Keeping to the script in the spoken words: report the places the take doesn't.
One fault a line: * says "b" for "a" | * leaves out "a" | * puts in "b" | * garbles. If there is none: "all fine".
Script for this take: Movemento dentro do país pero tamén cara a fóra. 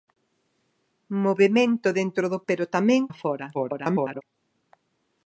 * leaves out "país"
* leaves out "cara"
* garbles